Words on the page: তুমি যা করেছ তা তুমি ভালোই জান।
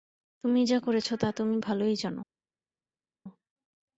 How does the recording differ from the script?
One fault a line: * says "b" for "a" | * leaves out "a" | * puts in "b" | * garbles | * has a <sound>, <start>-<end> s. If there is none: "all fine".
all fine